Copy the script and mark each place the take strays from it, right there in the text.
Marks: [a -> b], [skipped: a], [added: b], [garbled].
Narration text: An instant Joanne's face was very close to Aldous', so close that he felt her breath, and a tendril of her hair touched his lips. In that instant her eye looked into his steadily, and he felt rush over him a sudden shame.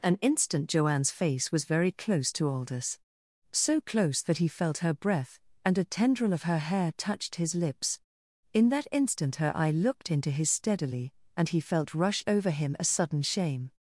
An instant Joanne's face was very close to Aldous', so close that he felt her breath, and a tendril of her hair touched his lips. In that instant her eye looked into his steadily, and he felt rush over him a sudden shame.